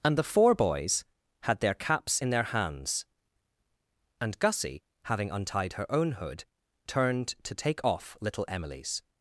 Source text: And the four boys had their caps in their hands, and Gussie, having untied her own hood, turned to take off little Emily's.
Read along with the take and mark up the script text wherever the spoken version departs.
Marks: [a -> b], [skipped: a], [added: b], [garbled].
And the four boys had their caps in their hands, and Gussie, having untied her own hood, turned to take off little Emily's.